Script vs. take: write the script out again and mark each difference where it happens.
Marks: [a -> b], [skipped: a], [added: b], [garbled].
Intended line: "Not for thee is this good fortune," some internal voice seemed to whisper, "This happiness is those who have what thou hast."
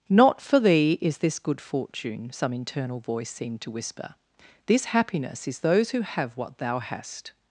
"Not for thee is this good fortune," some internal voice seemed to whisper, "This happiness is those who have what thou hast."